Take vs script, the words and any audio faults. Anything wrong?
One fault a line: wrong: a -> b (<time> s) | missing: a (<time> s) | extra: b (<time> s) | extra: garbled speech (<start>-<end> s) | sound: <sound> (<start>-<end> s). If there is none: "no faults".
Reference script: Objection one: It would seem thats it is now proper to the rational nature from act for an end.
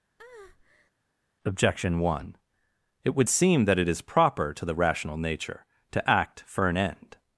sound: breath (0.2-0.9 s)
wrong: thats -> that (3.7 s)
missing: now (4.0 s)
wrong: from -> to (5.9 s)